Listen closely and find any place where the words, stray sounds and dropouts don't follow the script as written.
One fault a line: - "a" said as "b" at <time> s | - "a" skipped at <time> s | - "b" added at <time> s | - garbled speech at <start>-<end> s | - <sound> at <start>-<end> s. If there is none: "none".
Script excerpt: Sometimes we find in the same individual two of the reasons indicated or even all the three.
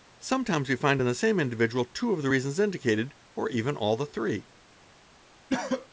- cough at 5.5-5.9 s